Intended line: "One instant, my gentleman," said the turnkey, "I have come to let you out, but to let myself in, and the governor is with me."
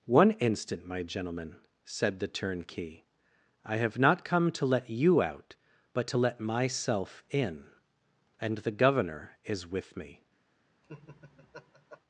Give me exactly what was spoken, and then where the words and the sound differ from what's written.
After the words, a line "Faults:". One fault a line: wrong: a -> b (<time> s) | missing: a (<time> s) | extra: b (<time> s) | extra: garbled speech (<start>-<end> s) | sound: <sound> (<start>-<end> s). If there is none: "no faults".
"One instant, my gentleman," said the turnkey, "I have not come to let you out, but to let myself in, and the governor is with me."
Faults:
extra: not (4.0 s)
sound: laugh (10.8-12.0 s)